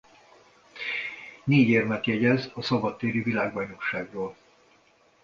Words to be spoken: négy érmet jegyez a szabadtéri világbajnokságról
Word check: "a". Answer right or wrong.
right